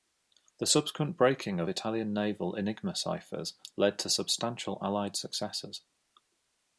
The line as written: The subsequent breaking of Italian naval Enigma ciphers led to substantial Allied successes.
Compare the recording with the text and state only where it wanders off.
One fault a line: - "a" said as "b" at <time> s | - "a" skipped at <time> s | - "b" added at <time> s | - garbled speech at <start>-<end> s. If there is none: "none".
none